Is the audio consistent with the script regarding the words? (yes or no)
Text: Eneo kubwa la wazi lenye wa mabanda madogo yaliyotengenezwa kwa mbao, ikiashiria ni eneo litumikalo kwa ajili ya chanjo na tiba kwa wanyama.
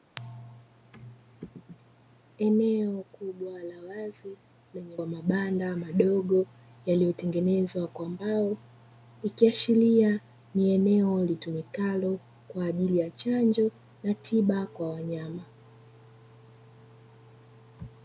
yes